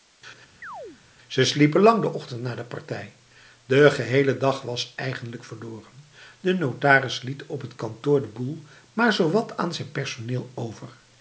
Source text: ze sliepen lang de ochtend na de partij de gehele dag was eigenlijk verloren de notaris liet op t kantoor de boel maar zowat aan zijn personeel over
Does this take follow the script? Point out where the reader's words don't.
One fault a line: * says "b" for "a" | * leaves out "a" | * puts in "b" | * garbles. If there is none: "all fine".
all fine